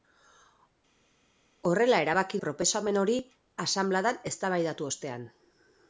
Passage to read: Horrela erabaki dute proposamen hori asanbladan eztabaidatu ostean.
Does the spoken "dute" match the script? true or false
false